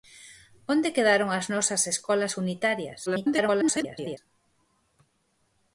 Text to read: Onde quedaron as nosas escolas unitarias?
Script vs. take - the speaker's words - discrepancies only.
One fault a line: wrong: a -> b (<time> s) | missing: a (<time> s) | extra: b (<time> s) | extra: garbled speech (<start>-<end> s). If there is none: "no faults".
extra: garbled speech (3.1-4.2 s)